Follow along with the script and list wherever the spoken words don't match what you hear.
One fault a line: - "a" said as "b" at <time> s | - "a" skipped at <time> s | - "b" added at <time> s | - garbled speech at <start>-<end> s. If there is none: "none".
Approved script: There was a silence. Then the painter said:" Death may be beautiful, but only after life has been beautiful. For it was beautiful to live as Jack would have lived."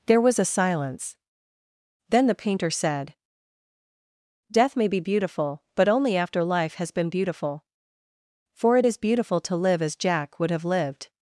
- "was" said as "is" at 8.8 s